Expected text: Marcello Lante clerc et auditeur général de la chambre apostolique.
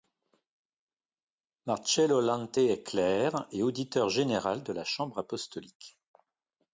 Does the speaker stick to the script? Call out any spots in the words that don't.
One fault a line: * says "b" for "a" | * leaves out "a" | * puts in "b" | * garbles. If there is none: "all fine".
* puts in "est"